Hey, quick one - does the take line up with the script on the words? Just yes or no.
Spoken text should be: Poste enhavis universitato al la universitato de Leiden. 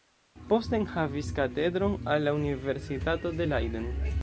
no